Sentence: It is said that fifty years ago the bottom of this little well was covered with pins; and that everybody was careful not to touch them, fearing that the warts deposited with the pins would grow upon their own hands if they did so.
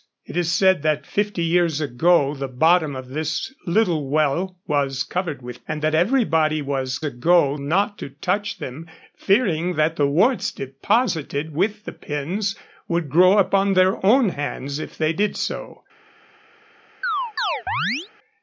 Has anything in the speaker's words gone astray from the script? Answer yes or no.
yes